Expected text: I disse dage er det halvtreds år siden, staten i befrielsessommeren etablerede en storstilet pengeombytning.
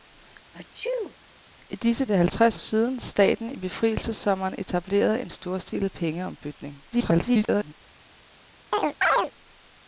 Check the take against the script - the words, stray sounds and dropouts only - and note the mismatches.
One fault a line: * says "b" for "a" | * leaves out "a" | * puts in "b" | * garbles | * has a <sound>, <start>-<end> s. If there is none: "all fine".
* has a sneeze, 0.5-1.2 s
* leaves out "dage"
* leaves out "år"
* garbles
* has a chirp, 8.7-9.3 s